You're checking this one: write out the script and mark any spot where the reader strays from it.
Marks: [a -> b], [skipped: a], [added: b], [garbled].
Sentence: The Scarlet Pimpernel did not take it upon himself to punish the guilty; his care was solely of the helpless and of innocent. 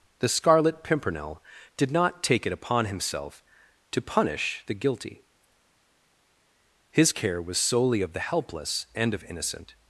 The Scarlet Pimpernel did not take it upon himself to punish the guilty; his care was solely of the helpless and of innocent.